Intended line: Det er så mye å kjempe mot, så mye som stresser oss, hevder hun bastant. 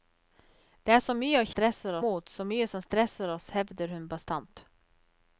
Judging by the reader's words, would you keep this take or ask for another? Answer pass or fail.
fail